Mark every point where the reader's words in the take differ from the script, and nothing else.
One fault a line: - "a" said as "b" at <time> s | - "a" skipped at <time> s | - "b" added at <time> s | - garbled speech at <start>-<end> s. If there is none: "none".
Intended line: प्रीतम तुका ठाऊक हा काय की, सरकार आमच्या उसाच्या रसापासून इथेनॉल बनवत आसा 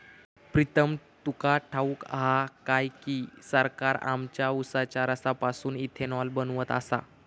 none